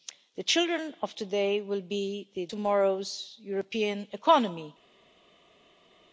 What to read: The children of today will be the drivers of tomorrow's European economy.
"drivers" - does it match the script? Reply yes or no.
no